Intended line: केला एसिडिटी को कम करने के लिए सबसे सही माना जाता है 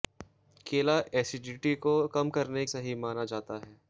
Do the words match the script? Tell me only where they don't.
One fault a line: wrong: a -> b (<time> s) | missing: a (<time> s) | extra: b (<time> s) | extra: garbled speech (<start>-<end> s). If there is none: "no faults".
missing: के लिए सबसे (2.7 s)